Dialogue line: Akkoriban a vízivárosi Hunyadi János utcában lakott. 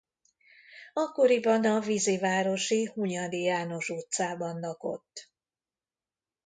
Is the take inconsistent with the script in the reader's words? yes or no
no